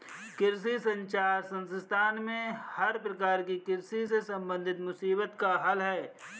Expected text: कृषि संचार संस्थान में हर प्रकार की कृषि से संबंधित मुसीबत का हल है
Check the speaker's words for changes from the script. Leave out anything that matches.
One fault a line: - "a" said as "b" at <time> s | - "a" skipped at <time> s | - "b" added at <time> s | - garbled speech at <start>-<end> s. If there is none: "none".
none